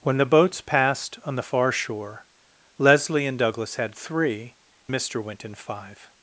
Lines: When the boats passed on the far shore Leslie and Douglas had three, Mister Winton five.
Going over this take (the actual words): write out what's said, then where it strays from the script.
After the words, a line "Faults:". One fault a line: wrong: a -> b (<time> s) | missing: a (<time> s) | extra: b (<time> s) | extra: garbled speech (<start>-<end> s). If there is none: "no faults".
When the boats passed on the far shore Leslie and Douglas had three, Mister Winton five.
Faults:
no faults